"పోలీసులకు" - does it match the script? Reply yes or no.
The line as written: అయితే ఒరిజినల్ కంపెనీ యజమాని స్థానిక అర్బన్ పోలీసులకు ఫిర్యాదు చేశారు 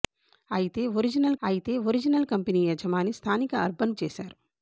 no